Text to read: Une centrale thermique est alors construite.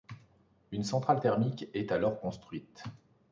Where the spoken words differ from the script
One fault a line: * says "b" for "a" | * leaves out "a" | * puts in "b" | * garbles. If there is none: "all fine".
all fine